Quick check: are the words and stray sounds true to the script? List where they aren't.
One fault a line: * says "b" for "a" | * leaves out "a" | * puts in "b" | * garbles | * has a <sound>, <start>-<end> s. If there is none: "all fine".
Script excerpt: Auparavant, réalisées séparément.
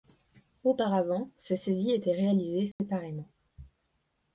* puts in "ces saisies étaient"
* has a dropout, 2.7-2.8 s